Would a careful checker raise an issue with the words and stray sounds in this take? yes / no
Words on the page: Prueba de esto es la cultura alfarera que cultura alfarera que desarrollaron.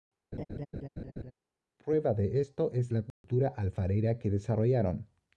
yes